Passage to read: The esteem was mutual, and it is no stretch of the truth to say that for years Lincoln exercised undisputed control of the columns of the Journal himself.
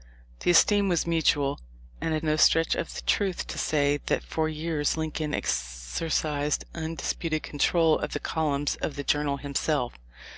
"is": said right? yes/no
no